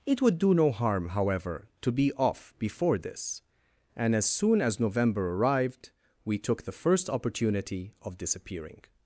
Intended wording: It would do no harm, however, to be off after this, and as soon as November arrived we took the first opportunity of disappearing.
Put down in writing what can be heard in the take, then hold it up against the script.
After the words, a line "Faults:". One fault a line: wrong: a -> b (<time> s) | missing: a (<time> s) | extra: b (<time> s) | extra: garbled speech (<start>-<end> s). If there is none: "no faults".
It would do no harm, however, to be off before this, and as soon as November arrived we took the first opportunity of disappearing.
Faults:
wrong: after -> before (2.6 s)